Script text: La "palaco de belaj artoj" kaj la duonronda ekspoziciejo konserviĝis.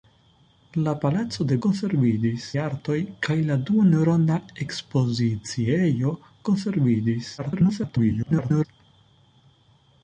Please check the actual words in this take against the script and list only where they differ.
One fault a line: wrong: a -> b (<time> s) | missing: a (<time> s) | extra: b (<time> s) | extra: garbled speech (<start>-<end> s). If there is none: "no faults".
wrong: belaj -> konserviĝis (1.7 s)
extra: garbled speech (7.4-8.7 s)